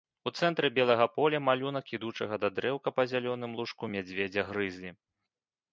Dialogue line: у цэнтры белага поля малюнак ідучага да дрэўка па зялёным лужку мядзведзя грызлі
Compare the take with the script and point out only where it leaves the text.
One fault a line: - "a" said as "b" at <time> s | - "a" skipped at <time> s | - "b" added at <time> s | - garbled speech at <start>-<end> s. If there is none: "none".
none